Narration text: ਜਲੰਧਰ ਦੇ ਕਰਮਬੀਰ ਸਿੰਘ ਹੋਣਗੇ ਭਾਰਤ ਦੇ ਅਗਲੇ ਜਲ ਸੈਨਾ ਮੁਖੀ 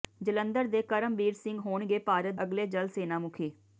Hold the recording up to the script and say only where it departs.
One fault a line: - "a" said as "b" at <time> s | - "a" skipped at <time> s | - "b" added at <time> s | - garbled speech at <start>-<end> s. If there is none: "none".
- "ਦੇ" skipped at 2.3 s